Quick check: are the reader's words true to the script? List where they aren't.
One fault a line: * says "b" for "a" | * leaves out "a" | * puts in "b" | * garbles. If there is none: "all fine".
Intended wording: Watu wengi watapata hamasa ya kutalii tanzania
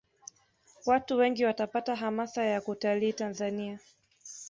all fine